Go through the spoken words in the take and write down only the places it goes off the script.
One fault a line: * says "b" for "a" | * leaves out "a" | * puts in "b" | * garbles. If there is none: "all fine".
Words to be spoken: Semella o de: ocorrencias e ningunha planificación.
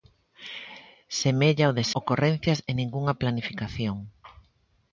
all fine